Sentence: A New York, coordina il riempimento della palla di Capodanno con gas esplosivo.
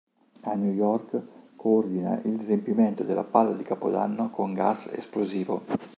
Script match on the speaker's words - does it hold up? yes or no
yes